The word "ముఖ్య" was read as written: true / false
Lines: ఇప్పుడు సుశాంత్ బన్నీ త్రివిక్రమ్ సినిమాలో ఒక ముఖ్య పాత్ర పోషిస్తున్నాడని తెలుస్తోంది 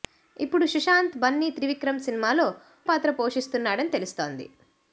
false